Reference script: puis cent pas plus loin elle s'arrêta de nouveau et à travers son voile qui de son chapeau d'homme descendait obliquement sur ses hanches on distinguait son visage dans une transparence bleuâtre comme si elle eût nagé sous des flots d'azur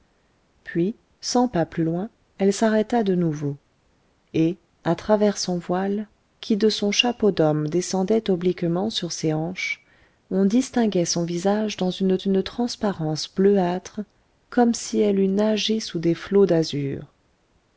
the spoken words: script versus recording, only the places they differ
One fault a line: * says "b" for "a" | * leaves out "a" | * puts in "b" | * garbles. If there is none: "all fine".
* puts in "une"